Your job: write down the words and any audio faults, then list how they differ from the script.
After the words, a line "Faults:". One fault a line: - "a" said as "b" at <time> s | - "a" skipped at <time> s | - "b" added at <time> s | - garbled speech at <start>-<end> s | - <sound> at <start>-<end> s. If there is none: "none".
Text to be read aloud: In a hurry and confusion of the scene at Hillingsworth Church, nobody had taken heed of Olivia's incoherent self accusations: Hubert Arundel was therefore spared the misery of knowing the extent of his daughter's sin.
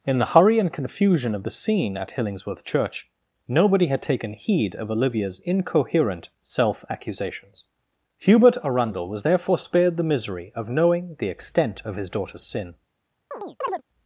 In the hurry and confusion of the scene at Hillingsworth Church, nobody had taken heed of Olivia's incoherent self accusations: Hubert Arundel was therefore spared the misery of knowing the extent of his daughter's sin.
Faults:
- "a" said as "the" at 0.2 s
- chirp at 13.3-13.8 s